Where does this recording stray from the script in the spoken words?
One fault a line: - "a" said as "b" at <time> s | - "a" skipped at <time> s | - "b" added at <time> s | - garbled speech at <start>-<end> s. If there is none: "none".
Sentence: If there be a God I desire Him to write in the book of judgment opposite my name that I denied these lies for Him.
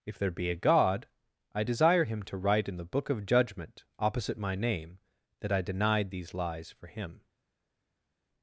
none